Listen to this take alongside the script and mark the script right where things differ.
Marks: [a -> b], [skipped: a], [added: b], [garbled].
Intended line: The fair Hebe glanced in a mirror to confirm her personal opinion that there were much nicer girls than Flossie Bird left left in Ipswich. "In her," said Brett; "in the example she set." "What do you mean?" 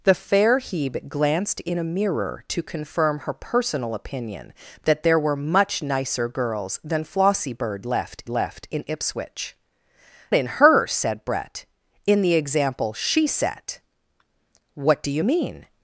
The fair Hebe glanced in a mirror to confirm her personal opinion that there were much nicer girls than Flossie Bird left left in Ipswich. "In her," said Brett; "in the example she set." "What do you mean?"